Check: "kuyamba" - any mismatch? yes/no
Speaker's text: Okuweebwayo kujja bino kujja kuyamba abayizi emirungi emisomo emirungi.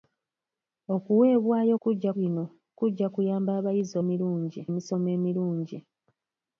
no